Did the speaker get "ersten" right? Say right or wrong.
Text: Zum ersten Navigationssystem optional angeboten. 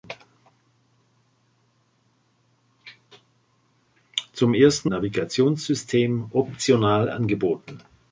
right